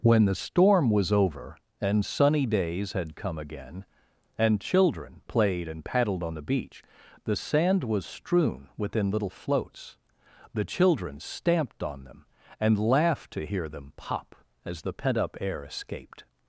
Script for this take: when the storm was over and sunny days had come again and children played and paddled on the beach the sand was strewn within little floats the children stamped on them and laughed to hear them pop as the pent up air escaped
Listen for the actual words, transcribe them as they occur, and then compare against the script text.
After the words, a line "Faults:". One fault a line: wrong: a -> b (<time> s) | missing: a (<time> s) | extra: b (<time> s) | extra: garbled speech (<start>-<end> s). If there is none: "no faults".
when the storm was over and sunny days had come again and children played and paddled on the beach the sand was strewn within little floats the children stamped on them and laughed to hear them pop as the pent up air escaped
Faults:
no faults